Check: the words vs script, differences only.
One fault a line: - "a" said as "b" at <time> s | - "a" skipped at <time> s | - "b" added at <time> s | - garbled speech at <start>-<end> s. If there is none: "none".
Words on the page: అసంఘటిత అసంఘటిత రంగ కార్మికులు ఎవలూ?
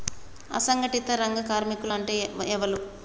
- "అసంఘటిత" skipped at 1.1 s
- "అంటే" added at 1.9 s